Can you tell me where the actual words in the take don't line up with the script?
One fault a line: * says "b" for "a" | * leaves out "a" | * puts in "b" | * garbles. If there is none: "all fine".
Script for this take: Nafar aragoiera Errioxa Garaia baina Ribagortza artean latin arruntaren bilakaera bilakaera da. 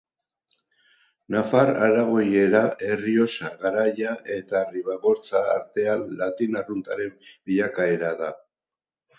* says "eta" for "baina"
* leaves out "bilakaera"